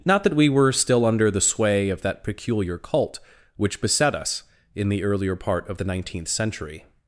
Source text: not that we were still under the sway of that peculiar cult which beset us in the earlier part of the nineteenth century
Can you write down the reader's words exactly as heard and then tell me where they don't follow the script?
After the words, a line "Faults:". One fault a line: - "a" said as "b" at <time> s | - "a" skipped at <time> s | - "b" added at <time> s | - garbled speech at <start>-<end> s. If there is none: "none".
not that we were still under the sway of that peculiar cult which beset us in the earlier part of the nineteenth century
Faults:
none